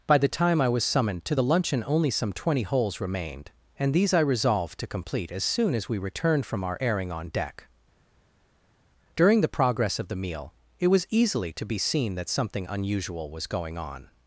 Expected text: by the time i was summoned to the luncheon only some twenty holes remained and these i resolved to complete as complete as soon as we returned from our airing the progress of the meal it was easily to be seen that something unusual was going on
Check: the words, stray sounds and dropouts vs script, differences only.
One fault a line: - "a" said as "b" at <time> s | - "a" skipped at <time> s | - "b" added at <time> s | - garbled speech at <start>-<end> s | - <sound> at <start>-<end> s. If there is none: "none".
- "complete as" skipped at 5.4 s
- "on deck during" added at 7.1 s